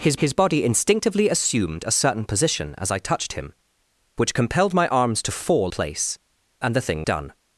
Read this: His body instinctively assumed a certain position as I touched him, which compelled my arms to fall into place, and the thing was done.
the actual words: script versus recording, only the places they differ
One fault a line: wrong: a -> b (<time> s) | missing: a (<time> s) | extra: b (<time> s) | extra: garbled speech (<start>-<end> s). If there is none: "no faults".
extra: his (0.2 s)
missing: into (5.7 s)
missing: was (7.0 s)